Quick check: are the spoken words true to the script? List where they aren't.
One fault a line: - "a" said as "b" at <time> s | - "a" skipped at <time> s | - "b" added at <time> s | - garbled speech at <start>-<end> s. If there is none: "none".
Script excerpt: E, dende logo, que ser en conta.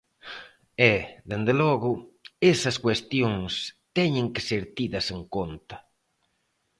- "esas cuestións teñen" added at 2.5 s
- "tidas" added at 4.8 s